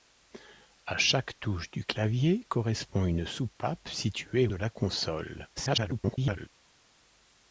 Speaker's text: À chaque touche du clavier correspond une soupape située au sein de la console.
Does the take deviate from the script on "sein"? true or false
true